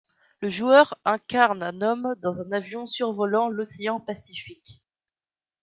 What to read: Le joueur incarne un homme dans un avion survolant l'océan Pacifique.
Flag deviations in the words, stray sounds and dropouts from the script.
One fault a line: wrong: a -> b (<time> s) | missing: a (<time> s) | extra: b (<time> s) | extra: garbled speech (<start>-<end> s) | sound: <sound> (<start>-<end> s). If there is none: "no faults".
no faults